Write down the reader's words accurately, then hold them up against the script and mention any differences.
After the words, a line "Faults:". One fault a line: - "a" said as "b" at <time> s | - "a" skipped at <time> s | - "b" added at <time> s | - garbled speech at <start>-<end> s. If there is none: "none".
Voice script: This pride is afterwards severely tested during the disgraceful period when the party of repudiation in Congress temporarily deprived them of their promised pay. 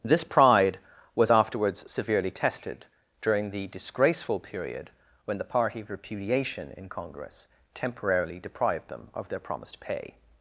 This pride was afterwards severely tested during the disgraceful period when the party of repudiation in Congress temporarily deprived them of their promised pay.
Faults:
- "is" said as "was" at 1.1 s